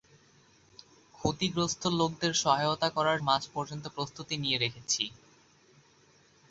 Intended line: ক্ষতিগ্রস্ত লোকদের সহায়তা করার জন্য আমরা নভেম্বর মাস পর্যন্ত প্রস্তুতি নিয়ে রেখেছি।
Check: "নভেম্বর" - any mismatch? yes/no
yes